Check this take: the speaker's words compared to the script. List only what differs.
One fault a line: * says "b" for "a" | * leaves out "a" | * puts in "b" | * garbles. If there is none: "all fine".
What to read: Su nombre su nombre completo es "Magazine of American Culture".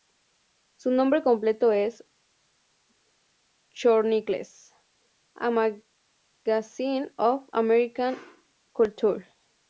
* says "completo es Chronicles A" for "su nombre completo es"